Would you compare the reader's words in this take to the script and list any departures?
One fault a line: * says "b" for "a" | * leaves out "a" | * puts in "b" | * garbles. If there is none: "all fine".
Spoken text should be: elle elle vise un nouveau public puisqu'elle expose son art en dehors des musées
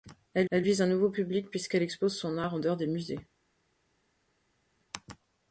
all fine